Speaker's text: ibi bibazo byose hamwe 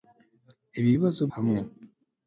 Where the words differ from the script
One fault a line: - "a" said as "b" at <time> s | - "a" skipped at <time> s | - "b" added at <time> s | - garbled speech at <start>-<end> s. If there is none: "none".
- "byose" skipped at 1.2 s